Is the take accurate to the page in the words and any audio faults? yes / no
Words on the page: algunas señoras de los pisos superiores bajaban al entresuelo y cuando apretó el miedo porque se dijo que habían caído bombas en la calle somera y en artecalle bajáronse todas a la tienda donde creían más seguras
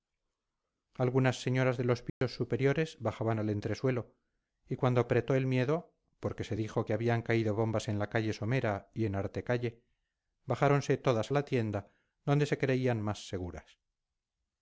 no